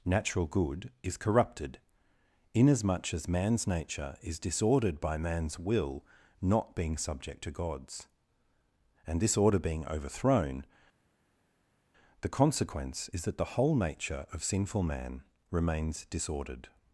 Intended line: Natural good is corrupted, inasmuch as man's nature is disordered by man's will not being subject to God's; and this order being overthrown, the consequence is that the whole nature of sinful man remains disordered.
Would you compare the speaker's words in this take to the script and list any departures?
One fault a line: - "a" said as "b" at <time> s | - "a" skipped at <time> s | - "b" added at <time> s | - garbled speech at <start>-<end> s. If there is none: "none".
none